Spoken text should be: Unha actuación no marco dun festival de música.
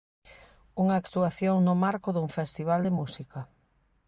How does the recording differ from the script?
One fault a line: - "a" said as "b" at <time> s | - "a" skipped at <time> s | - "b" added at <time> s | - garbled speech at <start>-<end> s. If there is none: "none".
none